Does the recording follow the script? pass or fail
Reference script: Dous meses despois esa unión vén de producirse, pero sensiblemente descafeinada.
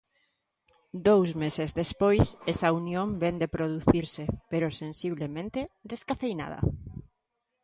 pass